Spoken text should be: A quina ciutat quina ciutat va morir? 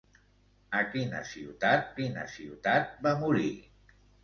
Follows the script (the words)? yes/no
yes